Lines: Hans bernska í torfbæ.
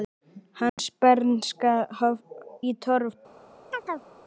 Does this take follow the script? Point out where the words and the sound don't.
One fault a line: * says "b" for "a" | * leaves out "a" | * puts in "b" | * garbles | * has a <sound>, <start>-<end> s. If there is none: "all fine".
* has a dropout, 0.7-0.8 s
* has a chirp, 3.7-4.1 s